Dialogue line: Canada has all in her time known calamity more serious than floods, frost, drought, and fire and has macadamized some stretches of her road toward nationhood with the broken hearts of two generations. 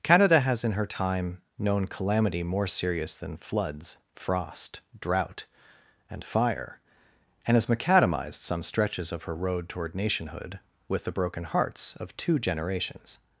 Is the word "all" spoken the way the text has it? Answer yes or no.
no